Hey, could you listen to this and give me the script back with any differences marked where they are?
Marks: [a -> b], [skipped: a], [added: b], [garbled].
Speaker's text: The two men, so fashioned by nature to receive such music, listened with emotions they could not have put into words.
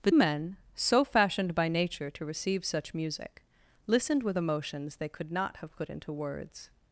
The [skipped: two] men, so fashioned by nature to receive such music, listened with emotions they could not have put into words.